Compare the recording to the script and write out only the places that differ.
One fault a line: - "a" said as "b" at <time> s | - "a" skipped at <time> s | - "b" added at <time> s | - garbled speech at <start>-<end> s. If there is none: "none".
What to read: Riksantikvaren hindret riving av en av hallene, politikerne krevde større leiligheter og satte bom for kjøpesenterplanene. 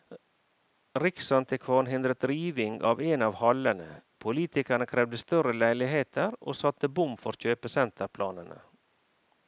none